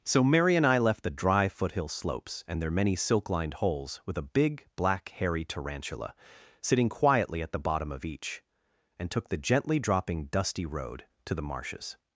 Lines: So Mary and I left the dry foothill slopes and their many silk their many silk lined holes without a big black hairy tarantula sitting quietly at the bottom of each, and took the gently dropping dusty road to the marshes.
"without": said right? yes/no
no